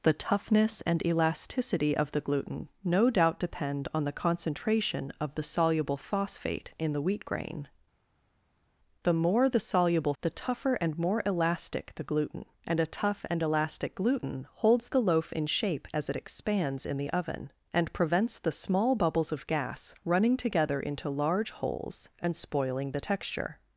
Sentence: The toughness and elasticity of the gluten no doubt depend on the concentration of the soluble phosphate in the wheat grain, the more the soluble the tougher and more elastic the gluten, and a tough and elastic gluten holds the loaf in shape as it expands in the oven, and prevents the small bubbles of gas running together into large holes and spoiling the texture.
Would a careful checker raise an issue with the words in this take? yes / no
no